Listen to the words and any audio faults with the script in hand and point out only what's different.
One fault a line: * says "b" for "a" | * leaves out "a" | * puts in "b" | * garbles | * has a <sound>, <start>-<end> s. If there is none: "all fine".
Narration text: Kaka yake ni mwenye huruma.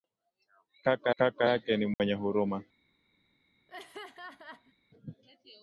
* puts in "kaka"
* has a dropout, 1.9-2.0 s
* has a laugh, 3.7-4.7 s